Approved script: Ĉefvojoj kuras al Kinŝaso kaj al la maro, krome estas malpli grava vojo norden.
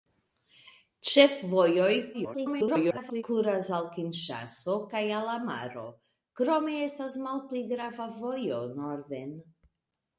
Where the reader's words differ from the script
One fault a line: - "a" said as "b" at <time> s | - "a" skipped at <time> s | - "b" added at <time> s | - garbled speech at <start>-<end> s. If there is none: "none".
- garbled speech at 2.1-3.2 s